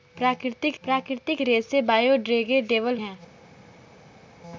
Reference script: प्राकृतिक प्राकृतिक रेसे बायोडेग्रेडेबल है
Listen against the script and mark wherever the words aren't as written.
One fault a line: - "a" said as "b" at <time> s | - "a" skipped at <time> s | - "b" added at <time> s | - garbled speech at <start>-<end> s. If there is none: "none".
none